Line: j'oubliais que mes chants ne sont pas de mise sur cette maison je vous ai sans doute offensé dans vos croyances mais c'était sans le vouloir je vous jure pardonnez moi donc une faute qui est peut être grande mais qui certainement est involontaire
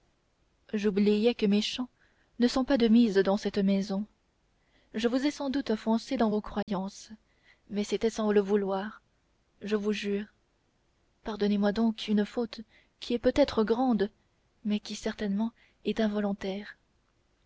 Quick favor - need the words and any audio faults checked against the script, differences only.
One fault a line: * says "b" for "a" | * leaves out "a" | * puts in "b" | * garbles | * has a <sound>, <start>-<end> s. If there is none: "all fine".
* says "dans" for "sur"
* has a dropout, 6.6-6.7 s